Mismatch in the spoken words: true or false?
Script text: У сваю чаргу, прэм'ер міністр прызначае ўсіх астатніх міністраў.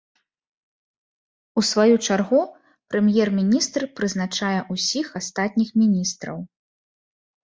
false